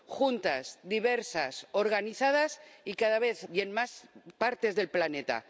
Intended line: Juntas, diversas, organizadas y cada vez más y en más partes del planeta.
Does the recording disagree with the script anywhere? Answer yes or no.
yes